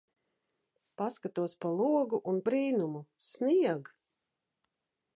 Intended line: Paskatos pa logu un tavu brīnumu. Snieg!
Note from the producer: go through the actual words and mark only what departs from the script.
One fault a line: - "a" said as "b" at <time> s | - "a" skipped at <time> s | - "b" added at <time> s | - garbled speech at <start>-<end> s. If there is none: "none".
- "tavu" skipped at 2.4 s